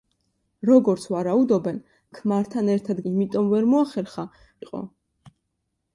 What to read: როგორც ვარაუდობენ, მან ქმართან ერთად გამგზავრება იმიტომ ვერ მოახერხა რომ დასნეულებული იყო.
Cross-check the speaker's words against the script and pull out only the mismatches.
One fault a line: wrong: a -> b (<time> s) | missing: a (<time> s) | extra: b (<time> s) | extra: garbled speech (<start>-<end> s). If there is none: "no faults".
missing: მან (1.8 s)
missing: გამგზავრება (3.0 s)
missing: რომ დასნეულებული (4.3 s)